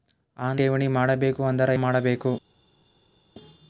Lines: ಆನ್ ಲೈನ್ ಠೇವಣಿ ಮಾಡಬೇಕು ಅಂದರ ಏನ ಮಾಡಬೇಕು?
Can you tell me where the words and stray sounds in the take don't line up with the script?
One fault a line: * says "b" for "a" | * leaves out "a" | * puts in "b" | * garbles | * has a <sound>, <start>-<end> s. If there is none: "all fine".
* leaves out "ಲೈನ್"
* leaves out "ಏನ"